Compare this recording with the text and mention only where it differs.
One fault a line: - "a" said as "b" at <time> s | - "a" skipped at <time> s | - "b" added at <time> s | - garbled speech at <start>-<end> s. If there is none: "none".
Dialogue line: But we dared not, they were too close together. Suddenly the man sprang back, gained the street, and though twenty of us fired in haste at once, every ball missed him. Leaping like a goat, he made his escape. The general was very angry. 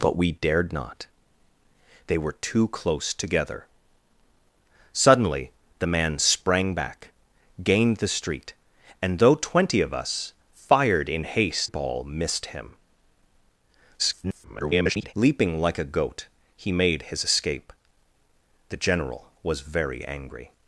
- "at once every" skipped at 11.7 s
- garbled speech at 14.0-15.1 s